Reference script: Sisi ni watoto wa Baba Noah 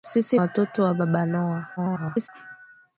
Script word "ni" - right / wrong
wrong